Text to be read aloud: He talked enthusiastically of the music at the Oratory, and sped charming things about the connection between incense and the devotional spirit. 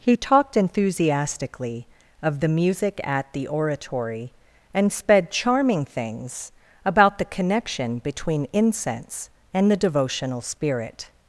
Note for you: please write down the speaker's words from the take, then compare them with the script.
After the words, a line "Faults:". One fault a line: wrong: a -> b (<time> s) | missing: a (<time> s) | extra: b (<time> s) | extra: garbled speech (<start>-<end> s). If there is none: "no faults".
He talked enthusiastically of the music at the Oratory, and sped charming things about the connection between incense and the devotional spirit.
Faults:
no faults